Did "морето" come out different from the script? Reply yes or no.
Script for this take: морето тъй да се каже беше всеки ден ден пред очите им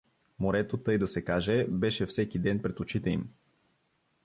no